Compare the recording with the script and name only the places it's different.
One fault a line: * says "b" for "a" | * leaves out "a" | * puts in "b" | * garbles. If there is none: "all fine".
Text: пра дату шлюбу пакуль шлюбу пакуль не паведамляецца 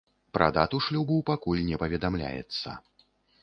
* leaves out "шлюбу пакуль"